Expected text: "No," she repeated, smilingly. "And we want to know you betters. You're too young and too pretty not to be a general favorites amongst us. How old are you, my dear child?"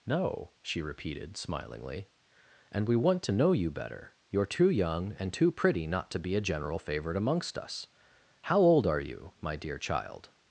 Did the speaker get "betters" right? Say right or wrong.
wrong